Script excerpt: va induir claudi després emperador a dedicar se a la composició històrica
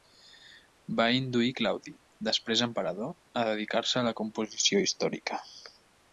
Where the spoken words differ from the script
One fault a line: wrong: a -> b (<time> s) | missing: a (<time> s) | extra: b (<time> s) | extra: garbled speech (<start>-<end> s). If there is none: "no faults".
no faults